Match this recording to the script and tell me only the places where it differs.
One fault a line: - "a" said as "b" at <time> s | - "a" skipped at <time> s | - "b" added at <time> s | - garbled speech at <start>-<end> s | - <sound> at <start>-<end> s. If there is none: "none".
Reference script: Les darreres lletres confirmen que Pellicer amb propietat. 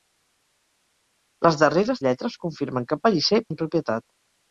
none